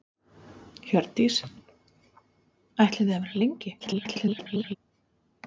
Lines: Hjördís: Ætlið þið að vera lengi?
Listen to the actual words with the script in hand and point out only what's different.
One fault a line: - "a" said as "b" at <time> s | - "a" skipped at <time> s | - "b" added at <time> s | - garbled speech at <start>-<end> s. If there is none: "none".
- garbled speech at 3.8-4.8 s